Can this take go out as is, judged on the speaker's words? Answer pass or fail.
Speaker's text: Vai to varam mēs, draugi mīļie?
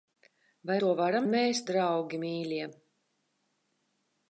pass